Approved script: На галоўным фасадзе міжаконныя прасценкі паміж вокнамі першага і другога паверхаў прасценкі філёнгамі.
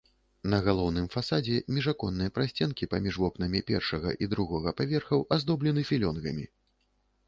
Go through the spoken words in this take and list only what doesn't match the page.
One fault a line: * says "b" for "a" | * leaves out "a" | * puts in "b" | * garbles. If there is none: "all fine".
* says "аздоблены" for "прасценкі"